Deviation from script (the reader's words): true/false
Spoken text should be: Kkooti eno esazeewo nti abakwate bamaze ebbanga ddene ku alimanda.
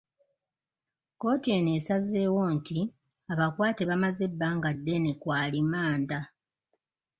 false